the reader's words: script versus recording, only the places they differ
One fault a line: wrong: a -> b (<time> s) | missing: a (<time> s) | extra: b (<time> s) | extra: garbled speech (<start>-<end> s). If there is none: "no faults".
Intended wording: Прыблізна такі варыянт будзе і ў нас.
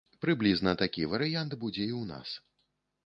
no faults